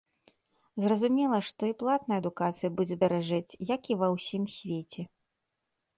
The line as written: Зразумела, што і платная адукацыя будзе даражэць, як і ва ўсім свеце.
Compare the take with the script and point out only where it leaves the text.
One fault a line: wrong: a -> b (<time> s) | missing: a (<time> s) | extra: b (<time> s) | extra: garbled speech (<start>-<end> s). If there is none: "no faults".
no faults